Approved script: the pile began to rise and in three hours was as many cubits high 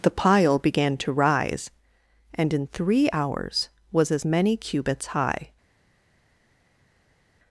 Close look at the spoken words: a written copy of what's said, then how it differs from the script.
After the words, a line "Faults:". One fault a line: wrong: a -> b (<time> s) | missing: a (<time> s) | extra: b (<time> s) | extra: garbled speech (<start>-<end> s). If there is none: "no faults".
the pile began to rise and in three hours was as many cubits high
Faults:
no faults